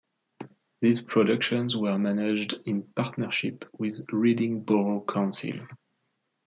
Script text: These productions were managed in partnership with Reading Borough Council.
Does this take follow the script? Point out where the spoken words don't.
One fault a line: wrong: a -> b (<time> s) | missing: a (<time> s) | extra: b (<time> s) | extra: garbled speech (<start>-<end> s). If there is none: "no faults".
no faults